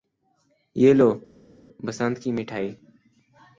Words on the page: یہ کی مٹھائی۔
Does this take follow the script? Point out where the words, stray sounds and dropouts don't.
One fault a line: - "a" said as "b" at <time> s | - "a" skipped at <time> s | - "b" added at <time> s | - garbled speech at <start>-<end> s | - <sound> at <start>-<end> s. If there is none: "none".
- "لو بسنت" added at 0.9 s